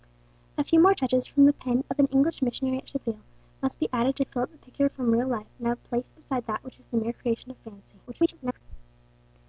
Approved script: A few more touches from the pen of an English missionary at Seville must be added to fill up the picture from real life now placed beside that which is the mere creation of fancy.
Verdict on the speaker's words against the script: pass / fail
fail